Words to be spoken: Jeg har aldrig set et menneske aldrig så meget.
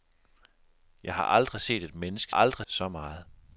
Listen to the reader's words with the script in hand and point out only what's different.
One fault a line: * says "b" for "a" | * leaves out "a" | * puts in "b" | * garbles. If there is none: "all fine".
all fine